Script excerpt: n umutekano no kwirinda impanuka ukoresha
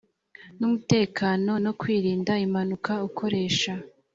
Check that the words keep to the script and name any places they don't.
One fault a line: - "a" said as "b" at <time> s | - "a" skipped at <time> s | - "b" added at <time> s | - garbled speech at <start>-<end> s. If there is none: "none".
none